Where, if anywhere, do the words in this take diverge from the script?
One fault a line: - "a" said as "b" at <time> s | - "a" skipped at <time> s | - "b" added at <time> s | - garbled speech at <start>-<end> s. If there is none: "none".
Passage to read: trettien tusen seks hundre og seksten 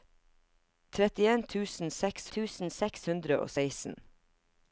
- "tusen seks" added at 2.3 s